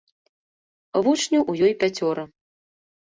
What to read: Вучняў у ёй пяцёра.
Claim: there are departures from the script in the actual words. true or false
false